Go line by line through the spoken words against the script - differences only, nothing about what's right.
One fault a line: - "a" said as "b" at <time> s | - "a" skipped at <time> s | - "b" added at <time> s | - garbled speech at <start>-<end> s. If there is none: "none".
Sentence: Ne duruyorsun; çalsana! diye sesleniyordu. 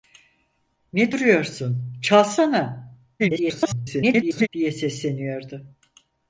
- garbled speech at 3.2-4.5 s